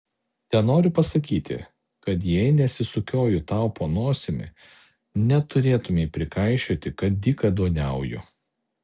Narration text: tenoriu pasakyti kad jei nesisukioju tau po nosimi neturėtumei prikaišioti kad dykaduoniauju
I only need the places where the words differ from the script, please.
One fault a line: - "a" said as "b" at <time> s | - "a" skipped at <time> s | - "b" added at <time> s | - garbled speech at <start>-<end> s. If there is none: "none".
none